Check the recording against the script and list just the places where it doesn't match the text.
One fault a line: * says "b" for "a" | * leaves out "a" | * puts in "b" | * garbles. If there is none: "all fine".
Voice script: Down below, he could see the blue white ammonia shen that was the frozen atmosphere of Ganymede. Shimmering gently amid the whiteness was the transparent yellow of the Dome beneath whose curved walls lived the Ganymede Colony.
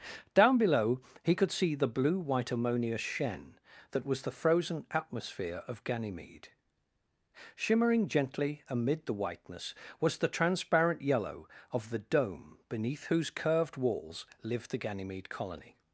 all fine